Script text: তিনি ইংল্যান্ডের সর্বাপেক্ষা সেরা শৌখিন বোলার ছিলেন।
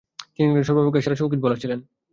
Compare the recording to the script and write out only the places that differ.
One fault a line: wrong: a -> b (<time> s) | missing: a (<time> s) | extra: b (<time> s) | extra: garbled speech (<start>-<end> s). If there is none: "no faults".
no faults